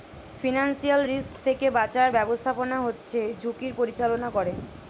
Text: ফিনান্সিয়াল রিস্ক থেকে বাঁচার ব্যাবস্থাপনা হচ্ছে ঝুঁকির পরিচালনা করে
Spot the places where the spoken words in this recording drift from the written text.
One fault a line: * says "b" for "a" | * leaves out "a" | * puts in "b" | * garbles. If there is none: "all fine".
all fine